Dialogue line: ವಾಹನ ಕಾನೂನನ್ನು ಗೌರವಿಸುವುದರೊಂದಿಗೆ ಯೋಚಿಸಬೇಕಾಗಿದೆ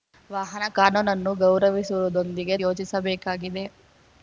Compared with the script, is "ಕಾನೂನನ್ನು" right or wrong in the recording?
right